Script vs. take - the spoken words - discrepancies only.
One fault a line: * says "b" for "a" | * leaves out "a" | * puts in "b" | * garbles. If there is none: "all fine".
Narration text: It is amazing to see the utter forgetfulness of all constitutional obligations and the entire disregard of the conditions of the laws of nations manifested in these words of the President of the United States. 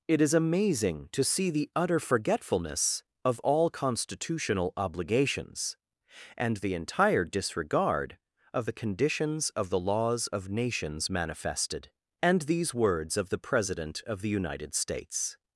* says "and" for "in"